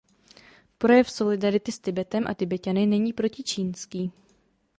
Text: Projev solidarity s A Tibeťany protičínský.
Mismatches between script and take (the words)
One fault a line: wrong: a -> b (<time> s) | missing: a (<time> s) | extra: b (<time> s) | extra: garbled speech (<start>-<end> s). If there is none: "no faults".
extra: Tibetem (1.8 s)
extra: není (2.8 s)